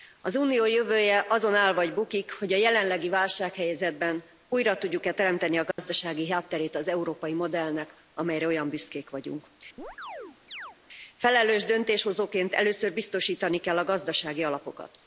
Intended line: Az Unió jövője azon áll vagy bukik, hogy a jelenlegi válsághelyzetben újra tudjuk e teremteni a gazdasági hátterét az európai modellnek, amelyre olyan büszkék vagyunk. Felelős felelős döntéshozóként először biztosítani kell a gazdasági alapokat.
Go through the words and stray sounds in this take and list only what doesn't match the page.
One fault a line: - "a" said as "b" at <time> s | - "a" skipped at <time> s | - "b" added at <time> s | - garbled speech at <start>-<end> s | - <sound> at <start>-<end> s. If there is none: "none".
- dropout at 5.7-5.8 s
- chirp at 9.8-10.8 s
- "felelős" skipped at 11.6 s